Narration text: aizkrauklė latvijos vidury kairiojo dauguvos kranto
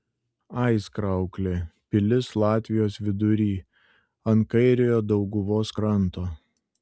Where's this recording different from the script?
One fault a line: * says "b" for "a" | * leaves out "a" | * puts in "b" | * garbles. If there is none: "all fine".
* puts in "pilis"
* puts in "ant"